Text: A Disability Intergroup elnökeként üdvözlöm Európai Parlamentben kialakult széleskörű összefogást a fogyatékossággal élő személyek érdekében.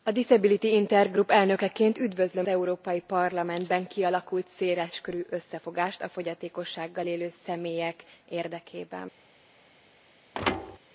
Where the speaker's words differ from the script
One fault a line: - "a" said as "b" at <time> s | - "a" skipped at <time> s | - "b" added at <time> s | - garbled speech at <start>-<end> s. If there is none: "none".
none